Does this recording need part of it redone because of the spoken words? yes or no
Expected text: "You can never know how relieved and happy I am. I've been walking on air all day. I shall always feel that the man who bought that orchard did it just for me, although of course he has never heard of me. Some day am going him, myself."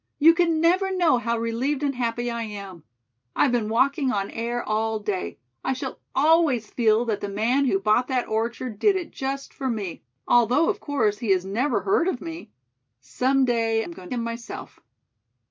no